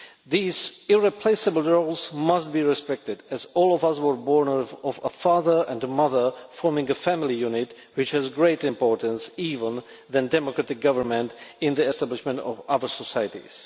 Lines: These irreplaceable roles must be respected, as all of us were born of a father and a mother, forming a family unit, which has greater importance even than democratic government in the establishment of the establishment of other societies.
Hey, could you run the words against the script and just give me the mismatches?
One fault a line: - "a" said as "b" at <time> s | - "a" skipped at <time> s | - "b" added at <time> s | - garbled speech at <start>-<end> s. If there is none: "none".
- "the establishment of" skipped at 12.6 s